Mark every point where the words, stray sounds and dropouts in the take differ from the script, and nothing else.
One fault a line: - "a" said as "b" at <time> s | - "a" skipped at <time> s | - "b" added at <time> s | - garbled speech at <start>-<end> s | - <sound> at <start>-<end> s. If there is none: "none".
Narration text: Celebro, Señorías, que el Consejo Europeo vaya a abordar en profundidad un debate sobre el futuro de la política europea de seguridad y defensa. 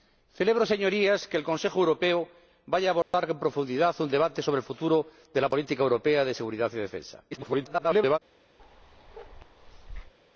- dropout at 3.0-3.1 s
- garbled speech at 7.3-8.2 s
- bark at 8.6-10.1 s